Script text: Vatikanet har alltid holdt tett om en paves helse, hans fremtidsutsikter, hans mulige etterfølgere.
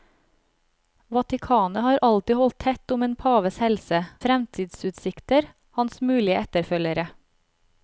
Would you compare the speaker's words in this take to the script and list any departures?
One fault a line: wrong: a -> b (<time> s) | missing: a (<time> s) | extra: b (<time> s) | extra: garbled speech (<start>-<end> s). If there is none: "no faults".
missing: hans (4.0 s)